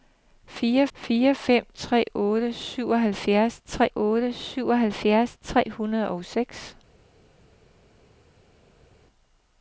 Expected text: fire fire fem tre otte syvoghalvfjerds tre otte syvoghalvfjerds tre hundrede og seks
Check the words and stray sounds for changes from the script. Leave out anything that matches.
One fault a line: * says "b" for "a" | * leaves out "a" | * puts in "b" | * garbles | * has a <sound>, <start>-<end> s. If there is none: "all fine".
all fine